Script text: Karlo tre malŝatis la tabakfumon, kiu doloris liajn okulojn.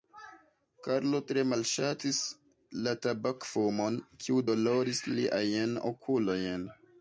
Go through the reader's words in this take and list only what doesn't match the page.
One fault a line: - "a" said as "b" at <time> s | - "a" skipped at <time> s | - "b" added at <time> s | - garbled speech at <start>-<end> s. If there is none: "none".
none